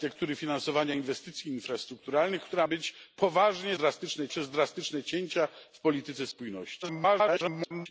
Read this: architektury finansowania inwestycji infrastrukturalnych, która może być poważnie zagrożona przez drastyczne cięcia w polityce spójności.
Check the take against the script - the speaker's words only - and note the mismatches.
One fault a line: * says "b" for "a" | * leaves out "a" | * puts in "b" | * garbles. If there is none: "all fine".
* leaves out "może"
* says "drastyczne" for "zagrożona"
* garbles